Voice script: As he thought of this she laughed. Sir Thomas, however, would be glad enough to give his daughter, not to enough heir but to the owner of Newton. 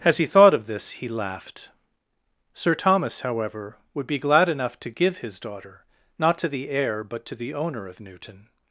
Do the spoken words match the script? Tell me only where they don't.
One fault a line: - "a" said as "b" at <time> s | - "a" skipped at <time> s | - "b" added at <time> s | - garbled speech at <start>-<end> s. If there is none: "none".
- "she" said as "he" at 0.9 s
- "enough" said as "the" at 6.5 s